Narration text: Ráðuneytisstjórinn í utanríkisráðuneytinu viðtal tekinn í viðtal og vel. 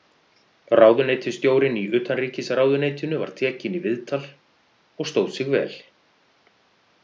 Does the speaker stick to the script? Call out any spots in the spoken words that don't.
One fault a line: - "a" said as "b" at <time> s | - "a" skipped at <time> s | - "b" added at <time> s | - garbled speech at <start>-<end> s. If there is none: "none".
- "viðtal" said as "var" at 3.2 s
- "stóð sig" added at 5.1 s